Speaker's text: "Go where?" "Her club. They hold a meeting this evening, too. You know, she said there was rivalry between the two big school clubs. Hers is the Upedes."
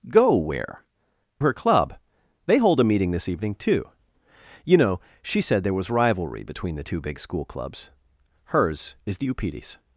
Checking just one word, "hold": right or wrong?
right